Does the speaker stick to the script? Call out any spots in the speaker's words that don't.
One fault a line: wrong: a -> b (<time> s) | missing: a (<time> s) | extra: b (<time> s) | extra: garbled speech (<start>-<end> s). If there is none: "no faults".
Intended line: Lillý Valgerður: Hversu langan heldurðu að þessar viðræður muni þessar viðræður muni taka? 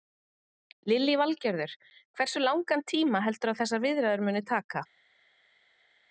extra: tíma (3.0 s)
missing: þessar viðræður muni (4.5 s)